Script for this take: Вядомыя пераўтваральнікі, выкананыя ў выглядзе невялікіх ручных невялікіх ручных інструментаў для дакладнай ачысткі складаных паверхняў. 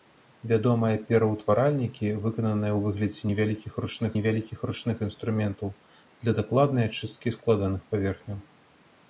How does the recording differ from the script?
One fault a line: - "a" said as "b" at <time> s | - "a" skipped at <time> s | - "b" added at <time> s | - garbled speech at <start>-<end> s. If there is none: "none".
none